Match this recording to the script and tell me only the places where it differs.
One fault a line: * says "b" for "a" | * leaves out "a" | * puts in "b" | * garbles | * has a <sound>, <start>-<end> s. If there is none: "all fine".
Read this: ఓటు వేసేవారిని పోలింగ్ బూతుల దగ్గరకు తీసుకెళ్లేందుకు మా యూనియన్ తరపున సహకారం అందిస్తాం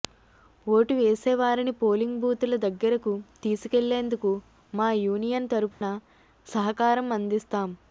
* has a dropout, 5.7-5.8 s